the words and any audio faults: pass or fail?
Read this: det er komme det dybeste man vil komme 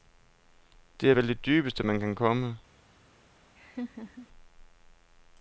fail